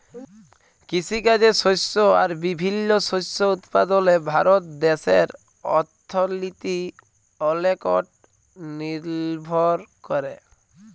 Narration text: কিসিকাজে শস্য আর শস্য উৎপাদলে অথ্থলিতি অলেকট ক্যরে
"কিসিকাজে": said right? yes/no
yes